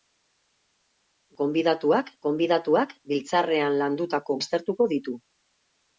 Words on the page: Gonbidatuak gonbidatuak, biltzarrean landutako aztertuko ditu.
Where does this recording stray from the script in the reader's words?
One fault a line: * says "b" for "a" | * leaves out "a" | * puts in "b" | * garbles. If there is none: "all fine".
all fine